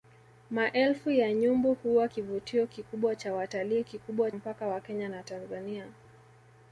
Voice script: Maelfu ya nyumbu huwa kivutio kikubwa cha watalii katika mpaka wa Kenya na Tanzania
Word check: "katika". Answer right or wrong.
wrong